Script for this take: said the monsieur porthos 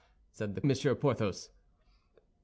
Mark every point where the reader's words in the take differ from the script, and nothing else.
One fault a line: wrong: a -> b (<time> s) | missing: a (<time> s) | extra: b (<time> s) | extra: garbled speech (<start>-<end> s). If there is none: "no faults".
no faults